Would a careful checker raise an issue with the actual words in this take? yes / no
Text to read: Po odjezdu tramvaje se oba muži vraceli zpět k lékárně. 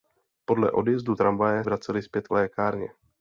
yes